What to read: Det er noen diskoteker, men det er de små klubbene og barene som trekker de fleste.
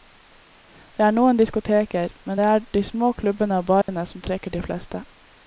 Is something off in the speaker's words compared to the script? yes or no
no